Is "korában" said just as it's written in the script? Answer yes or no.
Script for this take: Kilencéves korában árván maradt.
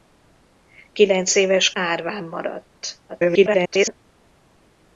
no